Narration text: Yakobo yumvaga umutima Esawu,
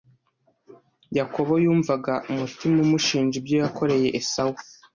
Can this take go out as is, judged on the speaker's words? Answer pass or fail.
fail